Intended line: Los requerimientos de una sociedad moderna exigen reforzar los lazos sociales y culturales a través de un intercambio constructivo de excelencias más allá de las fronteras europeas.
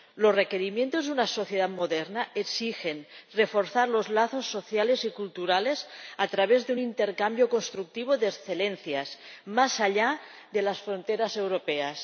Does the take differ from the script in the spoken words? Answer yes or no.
no